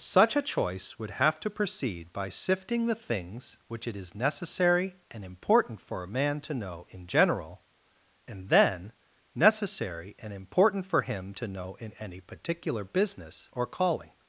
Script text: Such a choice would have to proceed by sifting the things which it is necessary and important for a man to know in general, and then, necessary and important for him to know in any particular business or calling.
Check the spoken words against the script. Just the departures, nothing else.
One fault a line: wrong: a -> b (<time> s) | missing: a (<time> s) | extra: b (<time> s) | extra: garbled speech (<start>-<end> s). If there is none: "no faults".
no faults